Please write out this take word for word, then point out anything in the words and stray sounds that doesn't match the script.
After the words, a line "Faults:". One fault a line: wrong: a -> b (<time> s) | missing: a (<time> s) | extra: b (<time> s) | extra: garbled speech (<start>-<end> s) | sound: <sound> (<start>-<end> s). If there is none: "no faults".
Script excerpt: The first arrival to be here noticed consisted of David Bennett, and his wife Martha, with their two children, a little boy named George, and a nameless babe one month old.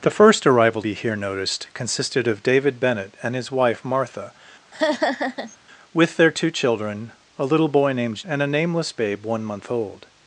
The first arrival be here noticed consisted of David Bennett, and his wife Martha, with their two children, a little boy named And a nameless babe one month old.
Faults:
missing: to (0.8 s)
sound: laugh (4.7-5.6 s)
missing: George (8.3 s)